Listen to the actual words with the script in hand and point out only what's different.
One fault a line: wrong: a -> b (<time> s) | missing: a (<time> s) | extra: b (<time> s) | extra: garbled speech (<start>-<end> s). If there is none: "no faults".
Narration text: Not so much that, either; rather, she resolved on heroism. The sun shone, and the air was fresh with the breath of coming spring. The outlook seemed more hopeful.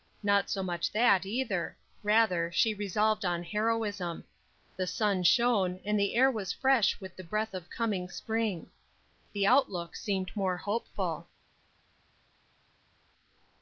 no faults